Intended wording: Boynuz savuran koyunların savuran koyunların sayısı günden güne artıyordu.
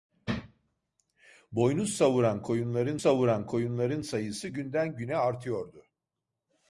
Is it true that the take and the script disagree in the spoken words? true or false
false